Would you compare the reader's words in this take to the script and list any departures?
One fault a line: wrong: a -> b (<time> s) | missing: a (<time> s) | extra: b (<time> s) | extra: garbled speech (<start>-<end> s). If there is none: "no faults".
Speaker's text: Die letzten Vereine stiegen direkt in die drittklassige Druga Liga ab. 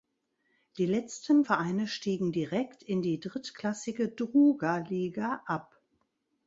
no faults